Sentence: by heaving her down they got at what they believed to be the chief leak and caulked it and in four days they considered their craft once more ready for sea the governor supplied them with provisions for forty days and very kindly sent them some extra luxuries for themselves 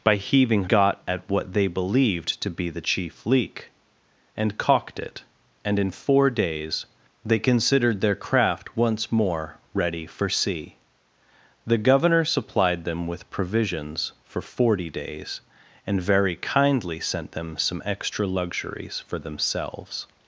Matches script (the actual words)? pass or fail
fail